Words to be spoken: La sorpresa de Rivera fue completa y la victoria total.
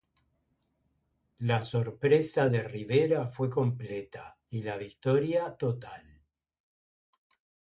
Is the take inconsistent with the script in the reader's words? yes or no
no